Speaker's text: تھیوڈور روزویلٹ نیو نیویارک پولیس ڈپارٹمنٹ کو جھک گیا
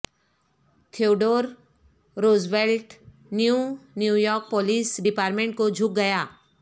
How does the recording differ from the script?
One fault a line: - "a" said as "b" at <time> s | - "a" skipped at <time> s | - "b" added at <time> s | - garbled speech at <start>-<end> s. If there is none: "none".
none